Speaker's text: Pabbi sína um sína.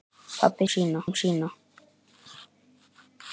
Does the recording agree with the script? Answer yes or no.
yes